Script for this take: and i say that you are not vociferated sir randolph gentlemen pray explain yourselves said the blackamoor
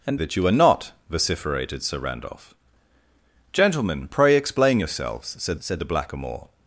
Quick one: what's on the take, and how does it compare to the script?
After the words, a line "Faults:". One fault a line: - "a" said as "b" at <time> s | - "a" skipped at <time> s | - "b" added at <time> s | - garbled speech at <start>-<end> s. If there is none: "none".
and that you are not vociferated sir randolph gentlemen pray explain yourselves said said the blackamoor
Faults:
- "i say" skipped at 0.2 s
- "said" added at 5.6 s